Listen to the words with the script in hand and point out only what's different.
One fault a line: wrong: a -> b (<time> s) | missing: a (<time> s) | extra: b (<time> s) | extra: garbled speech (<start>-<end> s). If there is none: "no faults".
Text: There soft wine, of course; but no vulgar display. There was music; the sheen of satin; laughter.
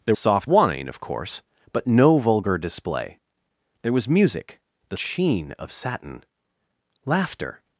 no faults